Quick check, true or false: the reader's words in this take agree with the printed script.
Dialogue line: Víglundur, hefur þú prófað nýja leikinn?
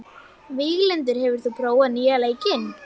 true